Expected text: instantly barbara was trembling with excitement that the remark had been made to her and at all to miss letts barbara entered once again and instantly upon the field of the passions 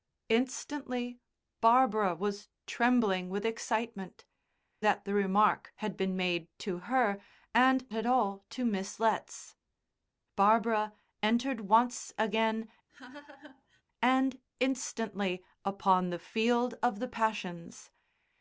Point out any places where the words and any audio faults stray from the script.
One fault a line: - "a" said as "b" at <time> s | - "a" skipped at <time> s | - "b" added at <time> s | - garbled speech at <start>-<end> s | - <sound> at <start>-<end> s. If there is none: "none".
- laugh at 12.9-13.8 s